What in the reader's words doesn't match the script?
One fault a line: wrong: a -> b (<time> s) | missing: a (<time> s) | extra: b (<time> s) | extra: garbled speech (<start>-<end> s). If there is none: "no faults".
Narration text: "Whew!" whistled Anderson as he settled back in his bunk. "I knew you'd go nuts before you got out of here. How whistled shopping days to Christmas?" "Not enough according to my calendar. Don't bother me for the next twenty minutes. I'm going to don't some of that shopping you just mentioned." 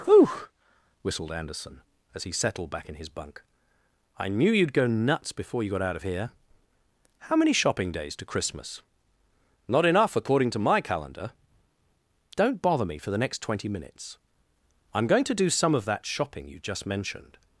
wrong: whistled -> many (7.3 s)
wrong: don't -> do (15.3 s)